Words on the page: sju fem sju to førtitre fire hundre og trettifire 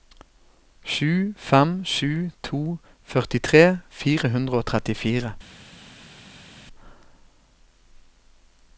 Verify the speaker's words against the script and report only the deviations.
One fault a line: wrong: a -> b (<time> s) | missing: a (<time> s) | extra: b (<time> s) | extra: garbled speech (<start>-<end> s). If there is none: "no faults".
no faults